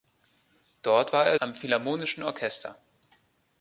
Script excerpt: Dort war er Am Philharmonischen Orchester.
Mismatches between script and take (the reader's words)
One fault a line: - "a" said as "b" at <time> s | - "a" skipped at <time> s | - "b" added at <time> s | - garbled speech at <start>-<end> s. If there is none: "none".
none